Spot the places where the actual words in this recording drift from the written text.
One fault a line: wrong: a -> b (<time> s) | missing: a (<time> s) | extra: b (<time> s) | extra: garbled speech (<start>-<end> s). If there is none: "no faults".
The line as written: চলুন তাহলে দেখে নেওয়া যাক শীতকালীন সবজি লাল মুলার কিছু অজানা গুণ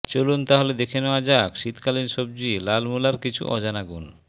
no faults